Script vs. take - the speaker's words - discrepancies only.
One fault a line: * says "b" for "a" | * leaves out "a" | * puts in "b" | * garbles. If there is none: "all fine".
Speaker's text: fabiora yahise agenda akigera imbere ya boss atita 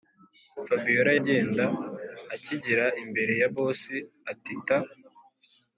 * leaves out "yahise"